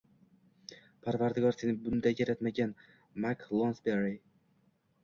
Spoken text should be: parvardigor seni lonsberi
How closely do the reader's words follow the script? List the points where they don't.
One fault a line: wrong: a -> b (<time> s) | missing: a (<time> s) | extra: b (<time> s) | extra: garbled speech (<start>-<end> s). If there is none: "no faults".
extra: bunday yaratmagan mak (1.8 s)